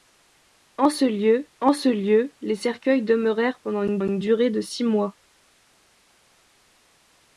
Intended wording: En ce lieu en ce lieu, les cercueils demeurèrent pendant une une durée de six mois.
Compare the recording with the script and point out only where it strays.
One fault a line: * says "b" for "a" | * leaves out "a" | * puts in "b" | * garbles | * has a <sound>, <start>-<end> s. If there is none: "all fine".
all fine